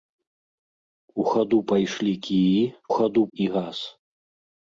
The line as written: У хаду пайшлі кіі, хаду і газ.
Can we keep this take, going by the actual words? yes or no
yes